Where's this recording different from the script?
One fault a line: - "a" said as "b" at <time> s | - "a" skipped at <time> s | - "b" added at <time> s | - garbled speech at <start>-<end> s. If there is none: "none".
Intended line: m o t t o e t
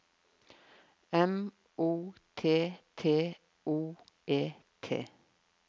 none